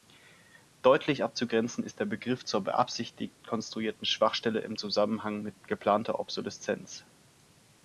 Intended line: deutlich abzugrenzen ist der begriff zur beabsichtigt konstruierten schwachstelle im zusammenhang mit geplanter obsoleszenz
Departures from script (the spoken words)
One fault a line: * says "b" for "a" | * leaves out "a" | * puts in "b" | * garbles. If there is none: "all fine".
all fine